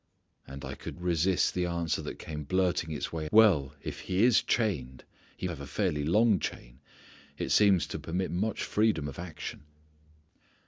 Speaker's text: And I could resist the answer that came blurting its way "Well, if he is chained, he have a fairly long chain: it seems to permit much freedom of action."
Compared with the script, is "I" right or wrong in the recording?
right